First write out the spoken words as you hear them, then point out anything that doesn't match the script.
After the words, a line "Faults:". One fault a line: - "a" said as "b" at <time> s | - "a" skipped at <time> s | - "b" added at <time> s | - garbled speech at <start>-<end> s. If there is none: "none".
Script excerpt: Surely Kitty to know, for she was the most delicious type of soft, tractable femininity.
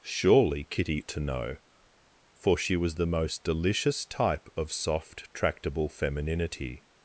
Surely Kitty to know, for she was the most delicious type of soft, tractable femininity.
Faults:
none